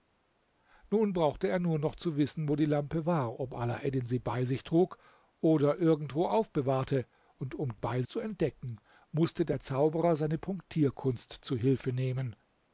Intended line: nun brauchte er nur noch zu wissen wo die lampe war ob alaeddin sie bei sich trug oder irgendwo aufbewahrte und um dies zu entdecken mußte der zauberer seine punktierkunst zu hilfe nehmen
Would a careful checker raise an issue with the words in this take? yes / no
yes